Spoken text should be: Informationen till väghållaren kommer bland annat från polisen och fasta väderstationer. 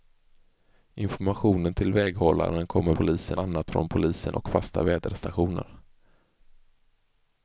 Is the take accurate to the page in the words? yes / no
no